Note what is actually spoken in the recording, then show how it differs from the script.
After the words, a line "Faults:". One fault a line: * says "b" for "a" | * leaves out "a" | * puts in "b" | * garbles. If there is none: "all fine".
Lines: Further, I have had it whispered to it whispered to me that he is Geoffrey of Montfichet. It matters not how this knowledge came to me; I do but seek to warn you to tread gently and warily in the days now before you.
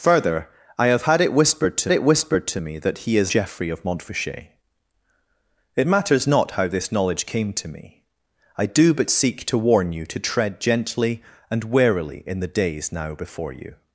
Further, I have had it whispered to it whispered to me that he is Geoffrey of Montfichet. It matters not how this knowledge came to me; I do but seek to warn you to tread gently and warily in the days now before you.
Faults:
all fine